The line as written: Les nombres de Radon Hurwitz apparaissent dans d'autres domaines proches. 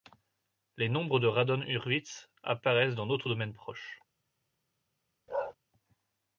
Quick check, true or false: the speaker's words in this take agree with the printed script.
true